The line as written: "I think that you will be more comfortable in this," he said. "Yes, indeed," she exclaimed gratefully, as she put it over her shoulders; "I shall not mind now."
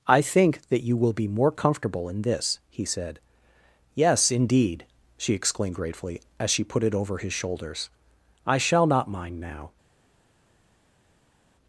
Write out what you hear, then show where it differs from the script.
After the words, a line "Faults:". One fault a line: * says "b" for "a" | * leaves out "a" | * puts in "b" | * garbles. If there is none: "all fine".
"I think that you will be more comfortable in this," he said. "Yes, indeed," she exclaimed gratefully, as she put it over his shoulders; "I shall not mind now."
Faults:
* says "his" for "her"